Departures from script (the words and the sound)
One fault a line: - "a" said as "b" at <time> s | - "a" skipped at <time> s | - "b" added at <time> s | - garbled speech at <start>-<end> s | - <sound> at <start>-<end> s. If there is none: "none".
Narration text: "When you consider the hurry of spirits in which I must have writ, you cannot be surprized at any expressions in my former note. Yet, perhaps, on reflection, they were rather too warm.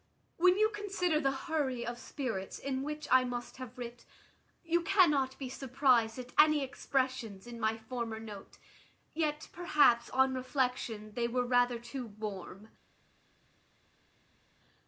none